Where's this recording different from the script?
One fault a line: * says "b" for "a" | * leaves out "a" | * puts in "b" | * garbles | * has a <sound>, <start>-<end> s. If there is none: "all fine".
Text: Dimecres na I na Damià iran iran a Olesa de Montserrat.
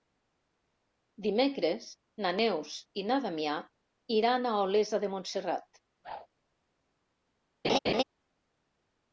* puts in "Neus"
* leaves out "iran"
* has a whoosh, 6.0-6.3 s
* has a laugh, 7.6-8.0 s